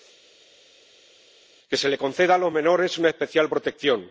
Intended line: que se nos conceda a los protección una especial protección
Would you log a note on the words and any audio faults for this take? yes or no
yes